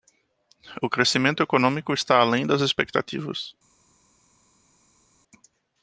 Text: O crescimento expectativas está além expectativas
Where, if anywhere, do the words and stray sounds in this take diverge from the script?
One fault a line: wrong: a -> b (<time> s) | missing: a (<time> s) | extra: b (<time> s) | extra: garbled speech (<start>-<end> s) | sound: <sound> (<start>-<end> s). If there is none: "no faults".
wrong: expectativas -> econômico (1.4 s)
extra: das (2.5 s)